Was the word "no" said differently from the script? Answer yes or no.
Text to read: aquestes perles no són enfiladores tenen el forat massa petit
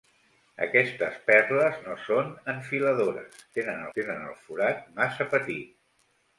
no